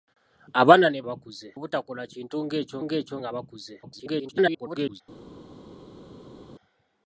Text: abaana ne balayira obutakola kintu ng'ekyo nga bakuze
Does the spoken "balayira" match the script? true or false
false